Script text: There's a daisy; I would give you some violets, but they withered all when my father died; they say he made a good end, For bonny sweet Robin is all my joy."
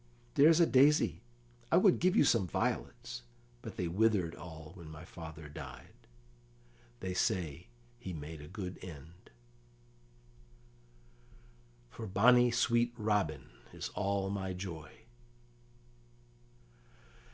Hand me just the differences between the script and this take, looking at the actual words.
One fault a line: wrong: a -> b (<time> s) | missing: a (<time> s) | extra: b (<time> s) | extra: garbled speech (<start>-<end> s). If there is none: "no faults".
no faults